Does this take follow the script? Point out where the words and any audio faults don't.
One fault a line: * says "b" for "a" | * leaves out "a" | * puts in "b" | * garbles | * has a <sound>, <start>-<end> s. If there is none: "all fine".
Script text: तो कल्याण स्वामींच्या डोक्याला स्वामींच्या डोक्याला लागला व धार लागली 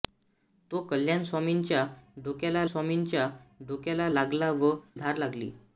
all fine